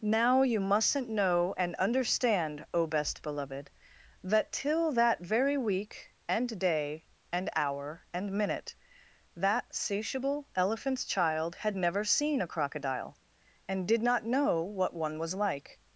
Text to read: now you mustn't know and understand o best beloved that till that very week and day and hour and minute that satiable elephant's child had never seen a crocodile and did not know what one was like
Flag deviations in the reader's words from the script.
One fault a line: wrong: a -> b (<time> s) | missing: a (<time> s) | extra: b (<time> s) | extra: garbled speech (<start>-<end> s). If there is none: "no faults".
no faults